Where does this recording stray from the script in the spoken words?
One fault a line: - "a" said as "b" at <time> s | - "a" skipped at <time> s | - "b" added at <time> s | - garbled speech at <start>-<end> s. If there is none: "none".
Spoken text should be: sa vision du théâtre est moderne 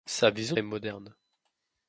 - "du théâtre" skipped at 0.6 s